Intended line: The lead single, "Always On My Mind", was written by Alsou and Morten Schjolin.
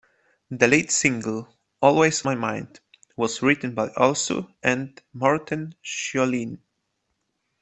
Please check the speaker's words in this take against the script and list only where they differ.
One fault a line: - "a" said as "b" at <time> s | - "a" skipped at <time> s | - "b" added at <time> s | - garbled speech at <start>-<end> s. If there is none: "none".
- "On" skipped at 2.2 s